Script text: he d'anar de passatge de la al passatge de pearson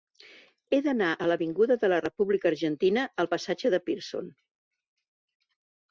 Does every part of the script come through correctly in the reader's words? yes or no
no